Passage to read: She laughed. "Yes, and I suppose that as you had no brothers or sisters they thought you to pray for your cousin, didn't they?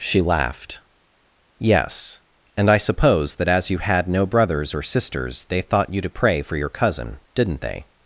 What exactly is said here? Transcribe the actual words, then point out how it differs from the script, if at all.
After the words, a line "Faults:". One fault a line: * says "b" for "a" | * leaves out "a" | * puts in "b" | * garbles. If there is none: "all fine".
She laughed. "Yes, and I suppose that as you had no brothers or sisters they thought you to pray for your cousin, didn't they?
Faults:
all fine